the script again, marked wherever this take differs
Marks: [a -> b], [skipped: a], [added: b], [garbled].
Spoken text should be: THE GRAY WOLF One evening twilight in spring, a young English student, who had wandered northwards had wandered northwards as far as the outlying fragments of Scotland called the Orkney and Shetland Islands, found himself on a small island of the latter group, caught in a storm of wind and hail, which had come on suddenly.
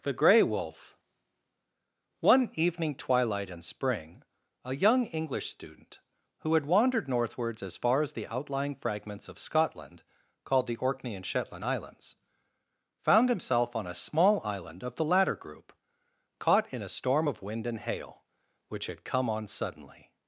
THE GRAY WOLF One evening twilight in spring, a young English student, who had wandered northwards [skipped: had wandered northwards] as far as the outlying fragments of Scotland called the Orkney and Shetland Islands, found himself on a small island of the latter group, caught in a storm of wind and hail, which had come on suddenly.